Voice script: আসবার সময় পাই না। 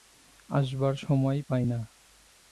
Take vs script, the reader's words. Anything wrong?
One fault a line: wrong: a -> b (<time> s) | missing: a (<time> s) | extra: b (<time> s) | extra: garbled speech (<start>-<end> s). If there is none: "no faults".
no faults